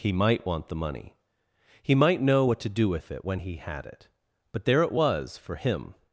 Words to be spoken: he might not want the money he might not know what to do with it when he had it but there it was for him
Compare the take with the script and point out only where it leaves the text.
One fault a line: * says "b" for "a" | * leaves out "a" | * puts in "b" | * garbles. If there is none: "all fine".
* leaves out "not"
* leaves out "not"